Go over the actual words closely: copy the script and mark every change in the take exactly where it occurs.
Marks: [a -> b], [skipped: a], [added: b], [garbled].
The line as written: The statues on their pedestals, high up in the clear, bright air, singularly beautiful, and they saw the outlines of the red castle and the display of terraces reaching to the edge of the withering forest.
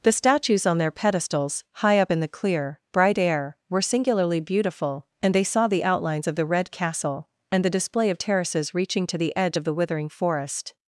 The statues on their pedestals, high up in the clear, bright air, [added: were] singularly beautiful, and they saw the outlines of the red castle and the display of terraces reaching to the edge of the withering forest.